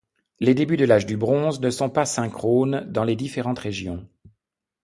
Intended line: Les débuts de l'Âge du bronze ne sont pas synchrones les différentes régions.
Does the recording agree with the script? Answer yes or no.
no